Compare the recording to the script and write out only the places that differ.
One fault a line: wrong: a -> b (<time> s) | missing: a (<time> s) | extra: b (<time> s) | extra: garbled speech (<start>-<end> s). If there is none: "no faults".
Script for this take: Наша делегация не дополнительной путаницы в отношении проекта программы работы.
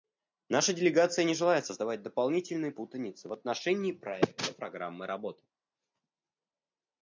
extra: желает создавать (1.4 s)